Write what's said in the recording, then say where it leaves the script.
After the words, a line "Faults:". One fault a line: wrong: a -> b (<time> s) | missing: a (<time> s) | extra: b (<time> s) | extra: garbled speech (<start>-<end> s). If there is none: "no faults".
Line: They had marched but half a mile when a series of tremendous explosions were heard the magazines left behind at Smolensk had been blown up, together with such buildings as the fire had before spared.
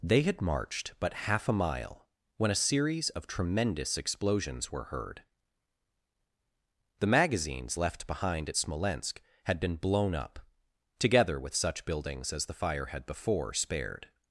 They had marched but half a mile when a series of tremendous explosions were heard the magazines left behind at Smolensk had been blown up, together with such buildings as the fire had before spared.
Faults:
no faults